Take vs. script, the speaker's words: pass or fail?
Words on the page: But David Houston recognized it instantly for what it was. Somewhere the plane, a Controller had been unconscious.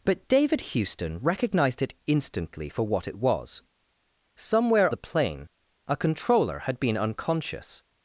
pass